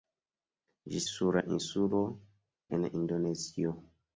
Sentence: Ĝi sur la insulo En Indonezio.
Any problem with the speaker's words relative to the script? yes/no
no